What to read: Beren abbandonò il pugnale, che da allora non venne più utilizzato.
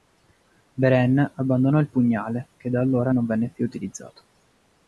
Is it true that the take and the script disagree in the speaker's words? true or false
false